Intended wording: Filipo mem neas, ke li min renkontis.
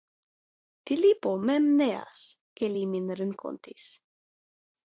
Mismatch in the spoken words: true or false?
false